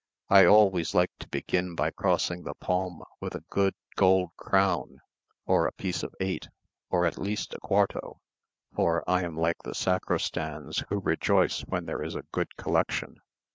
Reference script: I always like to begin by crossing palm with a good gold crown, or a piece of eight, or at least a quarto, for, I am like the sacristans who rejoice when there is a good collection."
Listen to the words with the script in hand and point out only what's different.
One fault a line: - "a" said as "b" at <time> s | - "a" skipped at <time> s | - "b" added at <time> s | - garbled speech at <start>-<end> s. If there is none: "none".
- "the" added at 2.4 s